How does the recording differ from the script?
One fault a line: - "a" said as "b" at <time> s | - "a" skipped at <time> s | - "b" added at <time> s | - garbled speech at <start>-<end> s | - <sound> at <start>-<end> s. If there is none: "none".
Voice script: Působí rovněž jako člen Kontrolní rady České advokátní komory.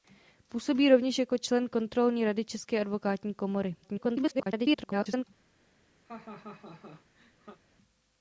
- garbled speech at 3.8-5.2 s
- laugh at 6.0-7.6 s